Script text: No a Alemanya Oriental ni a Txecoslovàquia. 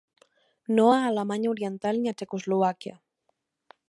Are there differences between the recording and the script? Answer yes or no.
no